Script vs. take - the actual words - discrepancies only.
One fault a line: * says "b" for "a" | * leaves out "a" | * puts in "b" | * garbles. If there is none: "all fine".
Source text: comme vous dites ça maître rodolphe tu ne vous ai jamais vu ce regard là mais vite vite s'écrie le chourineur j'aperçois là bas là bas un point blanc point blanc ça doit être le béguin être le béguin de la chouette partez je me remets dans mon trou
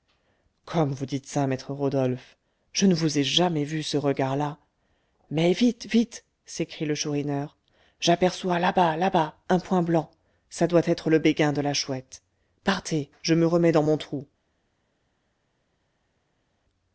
* says "je" for "tu"
* leaves out "point blanc"
* leaves out "être le béguin"